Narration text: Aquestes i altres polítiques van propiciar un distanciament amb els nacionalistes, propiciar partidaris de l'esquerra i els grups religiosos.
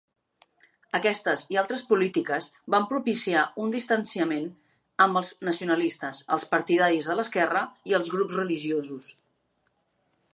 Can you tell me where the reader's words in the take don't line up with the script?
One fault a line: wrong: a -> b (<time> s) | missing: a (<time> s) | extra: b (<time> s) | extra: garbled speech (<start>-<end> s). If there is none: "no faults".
wrong: propiciar -> els (6.4 s)